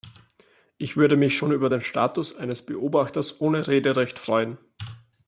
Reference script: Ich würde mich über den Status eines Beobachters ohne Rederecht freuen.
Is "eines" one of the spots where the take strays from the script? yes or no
no